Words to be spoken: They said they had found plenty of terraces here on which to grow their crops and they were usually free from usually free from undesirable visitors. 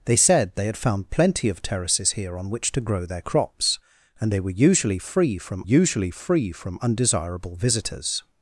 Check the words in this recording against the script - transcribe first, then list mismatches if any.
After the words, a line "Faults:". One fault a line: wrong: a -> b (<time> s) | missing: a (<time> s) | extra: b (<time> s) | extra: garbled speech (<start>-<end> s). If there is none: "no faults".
They said they had found plenty of terraces here on which to grow their crops and they were usually free from usually free from undesirable visitors.
Faults:
no faults